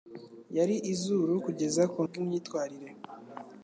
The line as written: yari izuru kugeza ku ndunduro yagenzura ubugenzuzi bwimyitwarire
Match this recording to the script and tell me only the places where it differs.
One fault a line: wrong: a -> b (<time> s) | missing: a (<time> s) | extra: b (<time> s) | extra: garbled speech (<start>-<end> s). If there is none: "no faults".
missing: ndunduro yagenzura ubugenzuzi (2.0 s)